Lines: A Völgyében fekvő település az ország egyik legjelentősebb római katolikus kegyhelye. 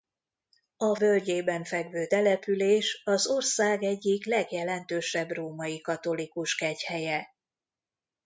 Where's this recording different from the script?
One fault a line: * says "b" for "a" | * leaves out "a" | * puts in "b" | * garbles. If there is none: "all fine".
all fine